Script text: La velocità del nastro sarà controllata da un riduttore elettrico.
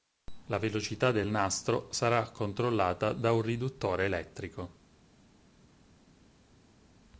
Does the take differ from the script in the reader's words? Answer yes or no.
no